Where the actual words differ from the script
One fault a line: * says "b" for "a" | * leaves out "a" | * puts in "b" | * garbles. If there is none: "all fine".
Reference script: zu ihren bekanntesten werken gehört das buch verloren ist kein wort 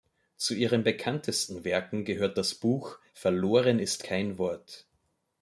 all fine